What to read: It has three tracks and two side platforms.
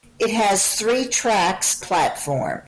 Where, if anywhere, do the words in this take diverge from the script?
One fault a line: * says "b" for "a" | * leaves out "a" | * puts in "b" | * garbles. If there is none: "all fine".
* leaves out "and two side"